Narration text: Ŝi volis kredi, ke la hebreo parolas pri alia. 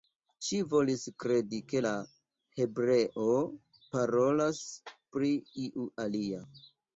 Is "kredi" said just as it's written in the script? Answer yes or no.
yes